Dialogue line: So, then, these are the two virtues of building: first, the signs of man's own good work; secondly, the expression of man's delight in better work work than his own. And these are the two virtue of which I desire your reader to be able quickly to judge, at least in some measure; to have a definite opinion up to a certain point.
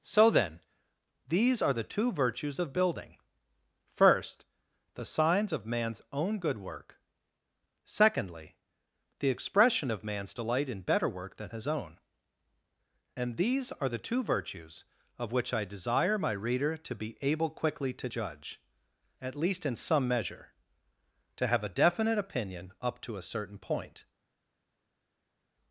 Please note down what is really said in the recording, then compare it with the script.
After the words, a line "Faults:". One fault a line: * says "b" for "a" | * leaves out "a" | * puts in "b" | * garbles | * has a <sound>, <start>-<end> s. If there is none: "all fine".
So, then, these are the two virtues of building: first, the signs of man's own good work; secondly, the expression of man's delight in better work than his own. And these are the two virtues of which I desire my reader to be able quickly to judge, at least in some measure; to have a definite opinion up to a certain point.
Faults:
* leaves out "work"
* says "virtues" for "virtue"
* says "my" for "your"